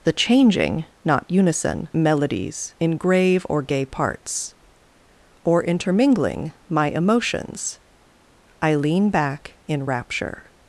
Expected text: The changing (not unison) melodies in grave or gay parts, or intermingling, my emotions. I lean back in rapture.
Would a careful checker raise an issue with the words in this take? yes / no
no